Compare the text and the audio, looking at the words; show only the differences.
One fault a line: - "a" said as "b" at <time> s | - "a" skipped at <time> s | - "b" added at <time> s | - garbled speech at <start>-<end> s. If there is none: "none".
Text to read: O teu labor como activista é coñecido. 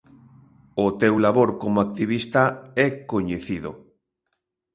none